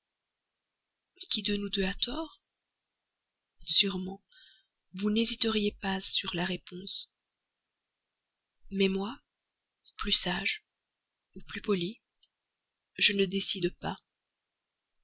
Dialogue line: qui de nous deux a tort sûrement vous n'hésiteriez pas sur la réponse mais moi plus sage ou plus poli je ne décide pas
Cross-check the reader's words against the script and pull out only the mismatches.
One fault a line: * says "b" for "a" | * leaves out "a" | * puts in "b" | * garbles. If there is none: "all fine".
all fine